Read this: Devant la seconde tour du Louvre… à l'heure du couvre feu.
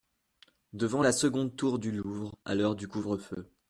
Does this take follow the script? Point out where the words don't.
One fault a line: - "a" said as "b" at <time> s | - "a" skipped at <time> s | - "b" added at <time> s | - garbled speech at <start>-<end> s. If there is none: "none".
none